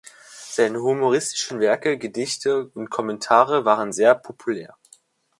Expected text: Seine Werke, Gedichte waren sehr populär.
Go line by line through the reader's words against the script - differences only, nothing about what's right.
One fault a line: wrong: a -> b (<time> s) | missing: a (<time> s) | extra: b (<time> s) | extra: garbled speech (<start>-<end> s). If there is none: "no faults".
extra: humoristischen (0.8 s)
extra: und Kommentare (2.7 s)